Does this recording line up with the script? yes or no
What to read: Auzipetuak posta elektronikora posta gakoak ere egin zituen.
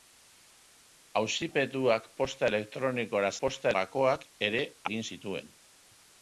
yes